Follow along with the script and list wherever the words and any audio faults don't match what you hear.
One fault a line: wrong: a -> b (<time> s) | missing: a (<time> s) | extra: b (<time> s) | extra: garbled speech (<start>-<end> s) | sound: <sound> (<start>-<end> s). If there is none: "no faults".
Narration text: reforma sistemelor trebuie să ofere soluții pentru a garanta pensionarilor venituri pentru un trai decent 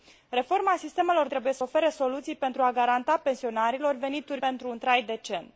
no faults